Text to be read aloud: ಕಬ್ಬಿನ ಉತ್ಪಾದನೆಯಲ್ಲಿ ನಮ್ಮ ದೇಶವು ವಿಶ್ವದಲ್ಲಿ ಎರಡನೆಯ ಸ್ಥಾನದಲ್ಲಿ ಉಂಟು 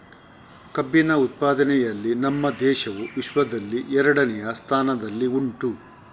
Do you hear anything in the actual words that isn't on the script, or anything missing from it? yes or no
no